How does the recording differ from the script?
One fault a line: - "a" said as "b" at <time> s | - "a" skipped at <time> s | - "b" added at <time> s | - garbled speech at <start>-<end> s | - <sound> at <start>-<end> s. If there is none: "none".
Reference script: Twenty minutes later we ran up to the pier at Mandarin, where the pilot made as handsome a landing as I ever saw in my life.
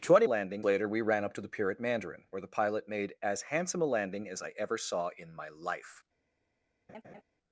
- "minutes" said as "landing" at 0.2 s
- laugh at 6.9-7.2 s